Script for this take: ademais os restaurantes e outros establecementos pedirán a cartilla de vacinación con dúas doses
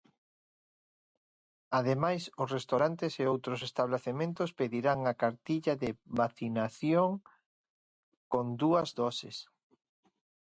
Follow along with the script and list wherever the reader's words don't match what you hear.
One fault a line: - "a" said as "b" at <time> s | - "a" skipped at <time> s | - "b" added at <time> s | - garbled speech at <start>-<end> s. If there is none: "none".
none